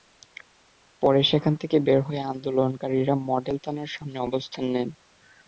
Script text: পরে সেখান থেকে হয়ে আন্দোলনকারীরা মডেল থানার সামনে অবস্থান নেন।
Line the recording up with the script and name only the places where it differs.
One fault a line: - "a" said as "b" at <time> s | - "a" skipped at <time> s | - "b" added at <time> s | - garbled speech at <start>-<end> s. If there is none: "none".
- "বের" added at 1.9 s